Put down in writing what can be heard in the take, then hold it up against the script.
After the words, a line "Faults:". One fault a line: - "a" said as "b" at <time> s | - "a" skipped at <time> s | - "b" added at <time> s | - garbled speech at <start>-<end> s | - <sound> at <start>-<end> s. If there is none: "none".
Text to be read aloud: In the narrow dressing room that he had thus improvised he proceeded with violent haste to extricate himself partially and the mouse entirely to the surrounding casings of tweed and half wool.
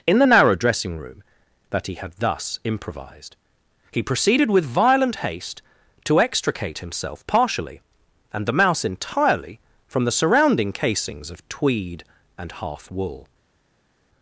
In the narrow dressing room that he had thus improvised he proceeded with violent haste to extricate himself partially and the mouse entirely from the surrounding casings of tweed and half wool.
Faults:
- "to" said as "from" at 9.9 s